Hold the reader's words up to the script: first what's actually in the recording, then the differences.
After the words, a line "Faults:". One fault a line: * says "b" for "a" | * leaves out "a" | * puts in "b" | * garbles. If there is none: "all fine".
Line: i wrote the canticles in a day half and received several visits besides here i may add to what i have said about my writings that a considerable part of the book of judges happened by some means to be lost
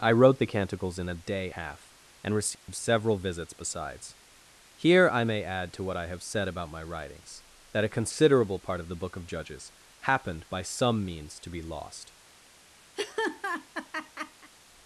i wrote the canticles in a day half and received several visits besides here i may add to what i have said about my writings that a considerable part of the book of judges happened by some means to be lost
Faults:
all fine